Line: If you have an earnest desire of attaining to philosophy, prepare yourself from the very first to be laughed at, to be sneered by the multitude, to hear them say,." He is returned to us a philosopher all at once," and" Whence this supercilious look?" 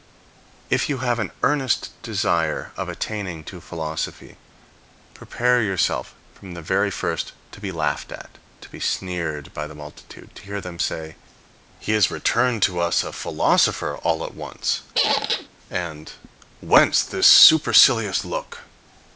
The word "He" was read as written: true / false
true